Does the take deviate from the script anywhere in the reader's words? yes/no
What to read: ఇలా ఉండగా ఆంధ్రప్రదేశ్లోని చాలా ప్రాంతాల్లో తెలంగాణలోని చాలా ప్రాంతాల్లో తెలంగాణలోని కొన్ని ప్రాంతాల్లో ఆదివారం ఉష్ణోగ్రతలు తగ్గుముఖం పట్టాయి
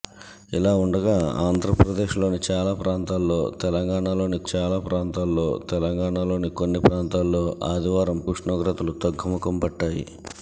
no